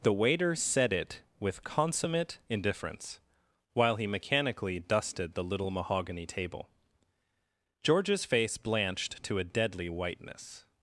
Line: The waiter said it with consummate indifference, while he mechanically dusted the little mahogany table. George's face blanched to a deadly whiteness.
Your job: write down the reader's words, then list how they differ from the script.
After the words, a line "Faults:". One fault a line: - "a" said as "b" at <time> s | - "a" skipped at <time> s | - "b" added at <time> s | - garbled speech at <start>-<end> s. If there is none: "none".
The waiter said it with consummate indifference, while he mechanically dusted the little mahogany table. George's face blanched to a deadly whiteness.
Faults:
none